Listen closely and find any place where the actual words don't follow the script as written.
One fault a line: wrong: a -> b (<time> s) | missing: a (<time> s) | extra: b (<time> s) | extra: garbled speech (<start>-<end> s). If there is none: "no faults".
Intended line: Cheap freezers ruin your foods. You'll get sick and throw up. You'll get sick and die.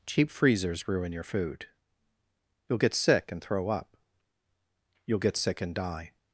wrong: foods -> food (1.2 s)